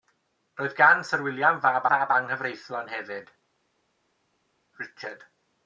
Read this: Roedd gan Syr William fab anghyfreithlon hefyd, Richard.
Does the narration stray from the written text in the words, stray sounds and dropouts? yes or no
yes